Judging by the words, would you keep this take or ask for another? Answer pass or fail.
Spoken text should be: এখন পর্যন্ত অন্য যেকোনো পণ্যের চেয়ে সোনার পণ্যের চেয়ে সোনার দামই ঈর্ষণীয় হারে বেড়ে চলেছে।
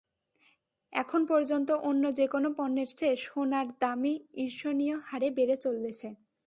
fail